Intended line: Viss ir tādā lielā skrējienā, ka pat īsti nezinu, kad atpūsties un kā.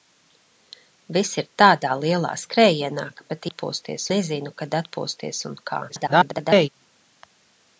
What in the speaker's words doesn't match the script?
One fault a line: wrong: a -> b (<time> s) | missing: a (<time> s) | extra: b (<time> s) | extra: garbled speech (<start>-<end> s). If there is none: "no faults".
wrong: īsti -> atpūsties (3.5 s)
extra: garbled speech (5.9-6.7 s)